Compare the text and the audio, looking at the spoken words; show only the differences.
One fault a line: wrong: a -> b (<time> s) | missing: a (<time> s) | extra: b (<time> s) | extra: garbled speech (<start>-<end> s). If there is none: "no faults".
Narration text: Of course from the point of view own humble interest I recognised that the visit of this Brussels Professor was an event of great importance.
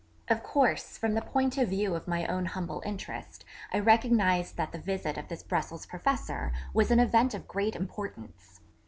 extra: of my (1.9 s)